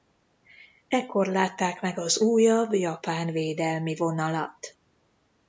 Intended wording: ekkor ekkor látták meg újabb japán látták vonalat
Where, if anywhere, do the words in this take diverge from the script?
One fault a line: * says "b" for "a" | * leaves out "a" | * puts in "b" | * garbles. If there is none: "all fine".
* leaves out "ekkor"
* puts in "az"
* says "védelmi" for "látták"